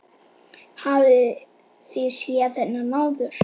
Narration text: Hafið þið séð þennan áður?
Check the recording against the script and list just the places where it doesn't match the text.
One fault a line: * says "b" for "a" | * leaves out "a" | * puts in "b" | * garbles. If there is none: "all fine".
all fine